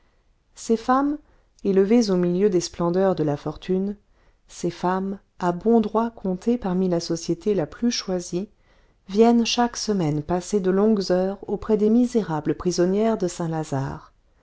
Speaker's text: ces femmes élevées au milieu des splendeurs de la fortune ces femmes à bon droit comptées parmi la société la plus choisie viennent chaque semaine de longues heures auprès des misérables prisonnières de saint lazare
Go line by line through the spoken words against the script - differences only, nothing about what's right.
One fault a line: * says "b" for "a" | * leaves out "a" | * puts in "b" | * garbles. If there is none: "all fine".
* puts in "passer"